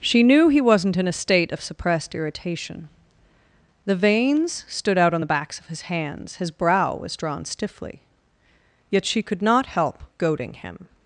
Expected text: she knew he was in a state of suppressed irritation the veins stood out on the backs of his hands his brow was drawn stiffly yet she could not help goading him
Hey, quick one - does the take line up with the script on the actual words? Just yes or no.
no